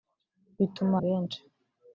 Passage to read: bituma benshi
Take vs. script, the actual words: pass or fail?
pass